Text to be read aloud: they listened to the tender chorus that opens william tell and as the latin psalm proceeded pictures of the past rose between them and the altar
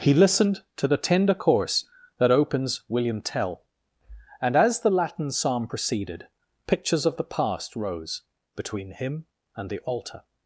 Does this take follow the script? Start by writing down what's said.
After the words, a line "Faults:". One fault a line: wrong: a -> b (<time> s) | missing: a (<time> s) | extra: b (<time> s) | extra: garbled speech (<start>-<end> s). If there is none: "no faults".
he listened to the tender chorus that opens william tell and as the latin psalm proceeded pictures of the past rose between him and the altar
Faults:
wrong: they -> he (0.0 s)
wrong: them -> him (8.9 s)